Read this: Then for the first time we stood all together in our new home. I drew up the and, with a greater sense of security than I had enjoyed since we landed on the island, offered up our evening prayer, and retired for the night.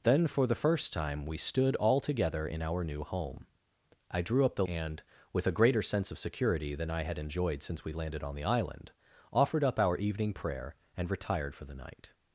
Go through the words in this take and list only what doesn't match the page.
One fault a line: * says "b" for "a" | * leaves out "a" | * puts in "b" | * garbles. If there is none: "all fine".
all fine